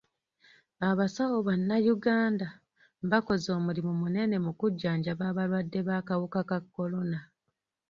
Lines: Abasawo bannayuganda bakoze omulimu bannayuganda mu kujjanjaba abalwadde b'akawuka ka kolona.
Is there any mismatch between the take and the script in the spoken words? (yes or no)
yes